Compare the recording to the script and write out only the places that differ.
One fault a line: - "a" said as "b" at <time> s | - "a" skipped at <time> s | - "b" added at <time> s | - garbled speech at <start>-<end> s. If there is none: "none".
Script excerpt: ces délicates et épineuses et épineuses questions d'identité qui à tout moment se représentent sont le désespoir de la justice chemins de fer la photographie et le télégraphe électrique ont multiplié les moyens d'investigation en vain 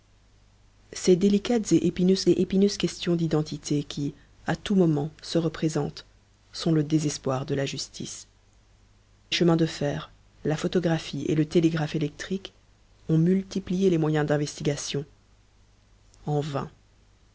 none